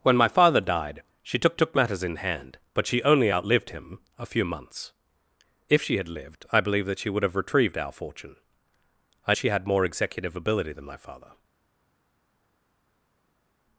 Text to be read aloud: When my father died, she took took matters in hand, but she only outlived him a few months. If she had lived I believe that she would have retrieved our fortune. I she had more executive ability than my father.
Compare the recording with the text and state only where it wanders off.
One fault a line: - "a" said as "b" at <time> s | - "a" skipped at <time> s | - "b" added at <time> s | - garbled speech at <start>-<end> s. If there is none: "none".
none